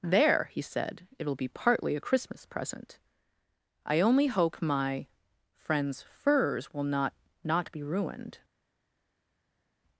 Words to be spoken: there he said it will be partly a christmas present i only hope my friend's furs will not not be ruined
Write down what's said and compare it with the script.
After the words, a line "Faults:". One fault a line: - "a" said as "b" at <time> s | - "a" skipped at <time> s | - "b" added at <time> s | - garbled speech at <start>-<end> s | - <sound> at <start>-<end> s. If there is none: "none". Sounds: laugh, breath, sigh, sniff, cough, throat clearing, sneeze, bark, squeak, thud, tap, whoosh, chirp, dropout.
there he said it will be partly a christmas present i only hope my friend's furs will not not be ruined
Faults:
none